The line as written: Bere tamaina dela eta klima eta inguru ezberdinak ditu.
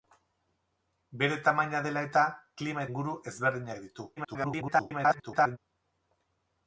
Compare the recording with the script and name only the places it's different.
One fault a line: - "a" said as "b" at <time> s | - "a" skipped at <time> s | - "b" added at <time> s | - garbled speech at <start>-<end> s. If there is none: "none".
- "eta" skipped at 2.9 s
- garbled speech at 4.2-5.6 s